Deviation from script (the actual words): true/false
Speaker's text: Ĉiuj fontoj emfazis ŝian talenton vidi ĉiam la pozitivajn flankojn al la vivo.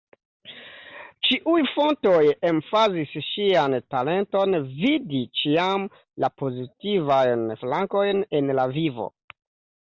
true